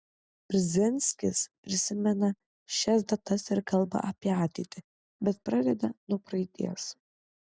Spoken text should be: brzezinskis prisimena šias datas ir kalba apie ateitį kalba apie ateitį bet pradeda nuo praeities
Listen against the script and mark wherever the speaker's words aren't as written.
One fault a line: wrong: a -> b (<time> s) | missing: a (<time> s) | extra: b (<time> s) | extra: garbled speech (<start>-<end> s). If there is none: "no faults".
missing: kalba apie ateitį (4.8 s)